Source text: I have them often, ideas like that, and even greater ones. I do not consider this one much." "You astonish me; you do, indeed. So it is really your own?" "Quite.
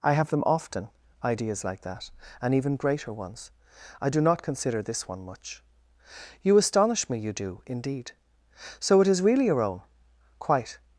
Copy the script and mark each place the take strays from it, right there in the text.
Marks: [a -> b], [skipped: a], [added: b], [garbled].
I have them often, ideas like that, and even greater ones. I do not consider this one much." "You astonish me; you do, indeed. So it is really your own?" "Quite.